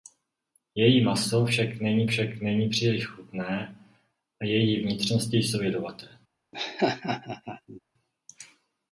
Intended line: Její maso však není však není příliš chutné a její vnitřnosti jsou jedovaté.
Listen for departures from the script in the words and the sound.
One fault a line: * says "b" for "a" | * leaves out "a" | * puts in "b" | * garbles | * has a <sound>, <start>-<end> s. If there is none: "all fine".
* has a laugh, 6.5-7.8 s